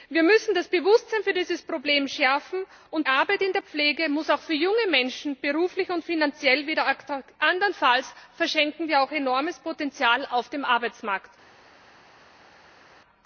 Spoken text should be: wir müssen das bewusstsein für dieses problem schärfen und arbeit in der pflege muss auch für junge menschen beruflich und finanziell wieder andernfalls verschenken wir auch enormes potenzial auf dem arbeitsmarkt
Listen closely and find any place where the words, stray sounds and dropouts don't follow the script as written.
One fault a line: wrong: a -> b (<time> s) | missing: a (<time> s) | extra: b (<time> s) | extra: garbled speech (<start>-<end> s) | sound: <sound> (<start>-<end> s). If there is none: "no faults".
no faults